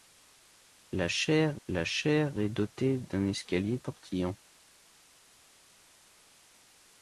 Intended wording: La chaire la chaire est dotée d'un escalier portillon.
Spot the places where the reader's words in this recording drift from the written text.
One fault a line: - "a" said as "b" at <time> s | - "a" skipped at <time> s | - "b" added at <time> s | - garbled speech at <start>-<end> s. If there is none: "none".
none